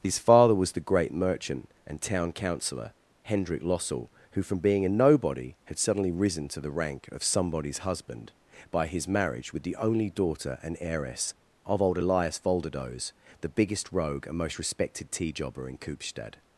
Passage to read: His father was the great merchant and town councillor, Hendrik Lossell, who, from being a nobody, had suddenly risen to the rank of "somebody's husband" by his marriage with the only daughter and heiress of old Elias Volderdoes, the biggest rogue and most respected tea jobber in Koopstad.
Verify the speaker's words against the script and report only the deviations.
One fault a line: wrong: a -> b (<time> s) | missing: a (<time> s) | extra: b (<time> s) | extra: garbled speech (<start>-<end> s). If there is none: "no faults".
no faults